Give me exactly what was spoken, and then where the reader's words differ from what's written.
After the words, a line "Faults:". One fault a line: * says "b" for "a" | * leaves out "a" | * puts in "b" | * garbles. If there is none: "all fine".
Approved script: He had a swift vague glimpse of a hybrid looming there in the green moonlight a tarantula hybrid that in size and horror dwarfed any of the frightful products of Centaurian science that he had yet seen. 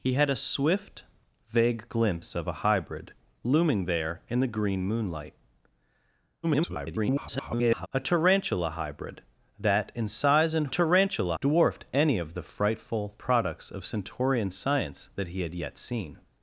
He had a swift vague glimpse of a hybrid looming there in the green moonlight [garbled] a tarantula hybrid that in size and tarantula dwarfed any of the frightful products of Centaurian science that he had yet seen.
Faults:
* garbles
* says "tarantula" for "horror"